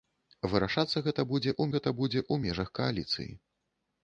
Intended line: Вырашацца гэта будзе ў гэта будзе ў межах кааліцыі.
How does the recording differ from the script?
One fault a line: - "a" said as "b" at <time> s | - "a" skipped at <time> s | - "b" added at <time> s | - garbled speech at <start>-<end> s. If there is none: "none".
none